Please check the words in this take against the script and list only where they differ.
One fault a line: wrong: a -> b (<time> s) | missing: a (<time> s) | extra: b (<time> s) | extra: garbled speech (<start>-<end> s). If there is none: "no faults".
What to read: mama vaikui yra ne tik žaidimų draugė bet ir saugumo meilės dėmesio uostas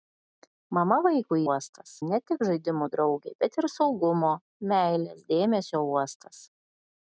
wrong: yra -> uostas (1.5 s)